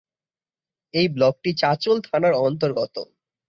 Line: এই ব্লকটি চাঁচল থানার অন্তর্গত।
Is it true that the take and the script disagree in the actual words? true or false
false